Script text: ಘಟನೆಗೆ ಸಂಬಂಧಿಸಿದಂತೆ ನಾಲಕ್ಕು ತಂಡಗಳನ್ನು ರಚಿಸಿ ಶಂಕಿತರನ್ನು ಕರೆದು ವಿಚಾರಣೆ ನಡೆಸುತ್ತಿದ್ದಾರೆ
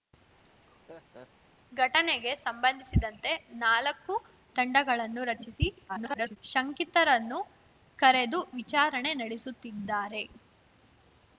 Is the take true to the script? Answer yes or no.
no